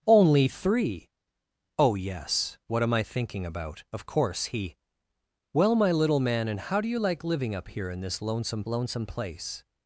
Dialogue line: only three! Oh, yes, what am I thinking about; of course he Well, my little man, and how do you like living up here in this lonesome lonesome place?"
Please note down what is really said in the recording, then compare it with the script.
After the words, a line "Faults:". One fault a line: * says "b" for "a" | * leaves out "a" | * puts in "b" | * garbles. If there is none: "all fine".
only three! Oh, yes, what am I thinking about; of course he Well, my little man, and how do you like living up here in this lonesome lonesome place?"
Faults:
all fine